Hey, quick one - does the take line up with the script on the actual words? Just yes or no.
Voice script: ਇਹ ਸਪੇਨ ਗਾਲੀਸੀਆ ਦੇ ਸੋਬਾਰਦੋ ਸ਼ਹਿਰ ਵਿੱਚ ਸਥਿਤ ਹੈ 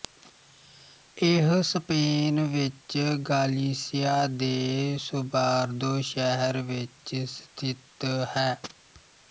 no